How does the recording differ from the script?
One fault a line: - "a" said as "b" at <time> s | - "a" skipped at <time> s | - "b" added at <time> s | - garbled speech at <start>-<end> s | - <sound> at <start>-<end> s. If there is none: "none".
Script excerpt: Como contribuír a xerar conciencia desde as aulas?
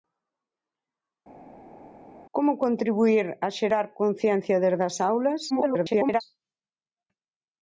- garbled speech at 5.5-6.2 s